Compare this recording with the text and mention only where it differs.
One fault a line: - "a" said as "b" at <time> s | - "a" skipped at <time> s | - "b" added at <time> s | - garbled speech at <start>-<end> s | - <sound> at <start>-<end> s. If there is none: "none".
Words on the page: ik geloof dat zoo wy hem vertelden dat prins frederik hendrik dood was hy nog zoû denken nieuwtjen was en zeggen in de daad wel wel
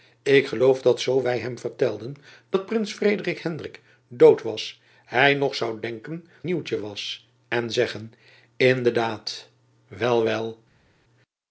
none